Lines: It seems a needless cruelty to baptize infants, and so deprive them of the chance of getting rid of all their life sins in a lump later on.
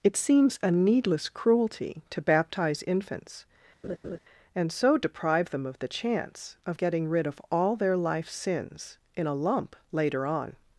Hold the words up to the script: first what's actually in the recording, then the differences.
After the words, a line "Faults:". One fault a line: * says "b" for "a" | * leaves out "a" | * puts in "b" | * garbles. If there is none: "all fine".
It seems a needless cruelty to baptize infants, and so deprive them of the chance of getting rid of all their life sins in a lump later on.
Faults:
all fine